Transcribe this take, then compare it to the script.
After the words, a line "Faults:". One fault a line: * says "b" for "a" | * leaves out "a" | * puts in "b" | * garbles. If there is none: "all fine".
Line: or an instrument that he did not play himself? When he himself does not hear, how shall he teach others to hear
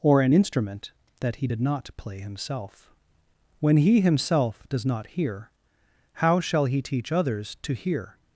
or an instrument that he did not play himself? When he himself does not hear, how shall he teach others to hear
Faults:
all fine